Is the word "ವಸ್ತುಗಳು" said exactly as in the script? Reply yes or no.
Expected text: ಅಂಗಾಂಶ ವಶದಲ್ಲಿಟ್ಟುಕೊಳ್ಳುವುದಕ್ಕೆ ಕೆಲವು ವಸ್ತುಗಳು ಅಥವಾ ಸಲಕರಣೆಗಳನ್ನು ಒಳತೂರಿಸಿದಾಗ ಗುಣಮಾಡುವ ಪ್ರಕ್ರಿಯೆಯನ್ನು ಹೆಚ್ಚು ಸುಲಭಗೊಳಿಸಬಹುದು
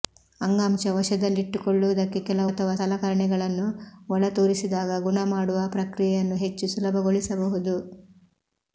no